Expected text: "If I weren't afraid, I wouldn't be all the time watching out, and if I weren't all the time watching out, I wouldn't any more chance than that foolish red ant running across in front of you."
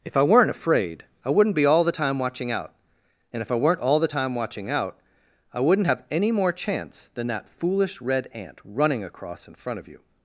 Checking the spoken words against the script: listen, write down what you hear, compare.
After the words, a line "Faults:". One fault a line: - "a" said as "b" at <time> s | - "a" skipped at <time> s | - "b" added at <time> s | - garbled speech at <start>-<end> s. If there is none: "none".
"If I weren't afraid, I wouldn't be all the time watching out, and if I weren't all the time watching out, I wouldn't have any more chance than that foolish red ant running across in front of you."
Faults:
- "have" added at 5.9 s